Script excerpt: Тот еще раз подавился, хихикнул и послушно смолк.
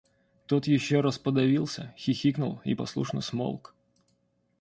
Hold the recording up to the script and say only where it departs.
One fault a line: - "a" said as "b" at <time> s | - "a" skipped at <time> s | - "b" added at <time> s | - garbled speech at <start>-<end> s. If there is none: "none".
none